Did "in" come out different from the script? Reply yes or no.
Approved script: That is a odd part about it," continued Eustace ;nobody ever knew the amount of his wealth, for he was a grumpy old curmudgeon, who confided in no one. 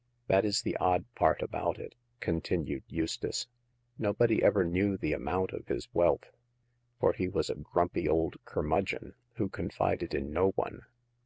no